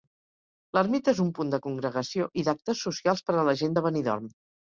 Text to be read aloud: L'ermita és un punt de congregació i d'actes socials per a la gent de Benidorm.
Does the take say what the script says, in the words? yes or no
yes